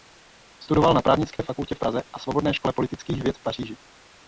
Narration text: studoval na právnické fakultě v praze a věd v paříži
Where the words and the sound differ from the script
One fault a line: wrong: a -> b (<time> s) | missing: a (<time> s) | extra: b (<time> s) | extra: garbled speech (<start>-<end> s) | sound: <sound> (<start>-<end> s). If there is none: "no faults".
sound: dropout (1.4-1.4 s)
extra: svobodné škole politických (2.2 s)